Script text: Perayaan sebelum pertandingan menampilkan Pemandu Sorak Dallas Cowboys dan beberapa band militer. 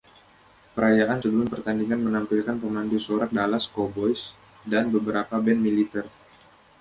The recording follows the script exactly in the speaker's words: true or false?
true